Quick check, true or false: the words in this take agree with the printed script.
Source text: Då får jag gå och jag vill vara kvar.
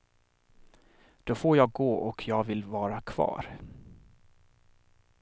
true